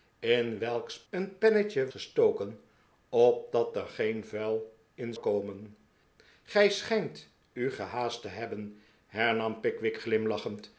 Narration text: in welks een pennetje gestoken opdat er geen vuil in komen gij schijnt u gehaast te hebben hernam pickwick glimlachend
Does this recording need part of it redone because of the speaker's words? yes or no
no